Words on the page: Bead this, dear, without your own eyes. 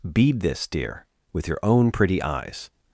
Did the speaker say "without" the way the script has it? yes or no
no